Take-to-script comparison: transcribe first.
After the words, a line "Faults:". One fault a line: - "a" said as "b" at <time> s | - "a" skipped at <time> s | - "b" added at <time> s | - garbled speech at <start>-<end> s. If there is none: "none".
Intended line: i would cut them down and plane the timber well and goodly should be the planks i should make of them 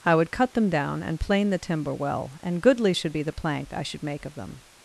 i would cut them down and plane the timber well and goodly should be the plank i should make of them
Faults:
- "planks" said as "plank" at 3.3 s